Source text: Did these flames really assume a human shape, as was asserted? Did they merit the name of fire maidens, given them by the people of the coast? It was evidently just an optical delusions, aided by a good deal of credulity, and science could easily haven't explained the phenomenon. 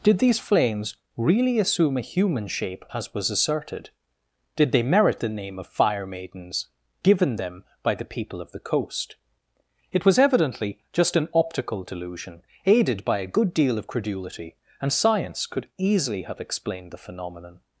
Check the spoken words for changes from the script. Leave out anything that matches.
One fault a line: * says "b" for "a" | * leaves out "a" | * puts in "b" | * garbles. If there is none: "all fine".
* says "delusion" for "delusions"
* says "have" for "haven't"